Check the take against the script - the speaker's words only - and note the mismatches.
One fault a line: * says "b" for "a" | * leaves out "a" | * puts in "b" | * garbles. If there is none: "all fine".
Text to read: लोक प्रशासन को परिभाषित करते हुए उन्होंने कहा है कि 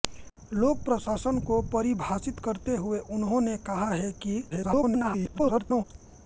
* garbles